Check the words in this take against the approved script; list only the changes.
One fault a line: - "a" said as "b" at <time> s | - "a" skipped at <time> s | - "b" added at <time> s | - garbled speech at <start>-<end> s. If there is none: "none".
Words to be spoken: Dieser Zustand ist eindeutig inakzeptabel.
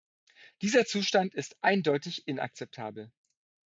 none